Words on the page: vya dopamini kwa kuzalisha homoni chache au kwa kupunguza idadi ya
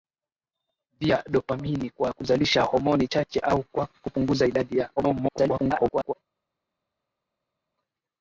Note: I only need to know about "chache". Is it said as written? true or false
true